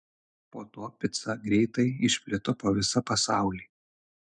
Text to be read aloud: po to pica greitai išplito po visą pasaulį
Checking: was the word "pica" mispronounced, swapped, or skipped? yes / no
no